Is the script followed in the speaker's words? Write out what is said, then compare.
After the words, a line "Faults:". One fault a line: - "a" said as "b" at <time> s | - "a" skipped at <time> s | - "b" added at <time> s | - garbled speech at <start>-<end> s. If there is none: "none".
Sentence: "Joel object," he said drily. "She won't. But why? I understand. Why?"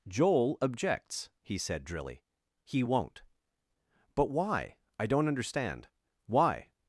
"Joel objects," he said drily. "He won't. But why? I don't understand. Why?"
Faults:
- "object" said as "objects" at 0.6 s
- "She" said as "He" at 2.6 s
- "don't" added at 5.1 s